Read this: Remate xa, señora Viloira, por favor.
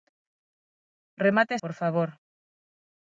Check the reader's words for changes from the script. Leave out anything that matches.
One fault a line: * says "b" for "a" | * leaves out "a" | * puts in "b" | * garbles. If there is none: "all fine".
* leaves out "xa señora Viloira"